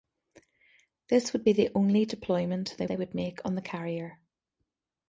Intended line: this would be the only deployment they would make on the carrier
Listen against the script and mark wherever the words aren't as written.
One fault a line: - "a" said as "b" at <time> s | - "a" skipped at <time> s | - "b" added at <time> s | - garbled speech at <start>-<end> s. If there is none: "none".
- "they" added at 2.9 s